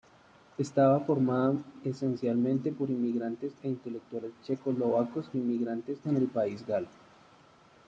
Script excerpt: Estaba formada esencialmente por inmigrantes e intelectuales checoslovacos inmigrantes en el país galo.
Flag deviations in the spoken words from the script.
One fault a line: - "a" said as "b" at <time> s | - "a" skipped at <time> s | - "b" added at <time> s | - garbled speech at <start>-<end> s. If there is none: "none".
none